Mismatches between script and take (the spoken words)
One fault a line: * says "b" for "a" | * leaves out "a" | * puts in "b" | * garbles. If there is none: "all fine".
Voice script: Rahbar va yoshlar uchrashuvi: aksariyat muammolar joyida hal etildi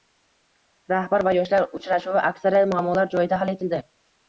all fine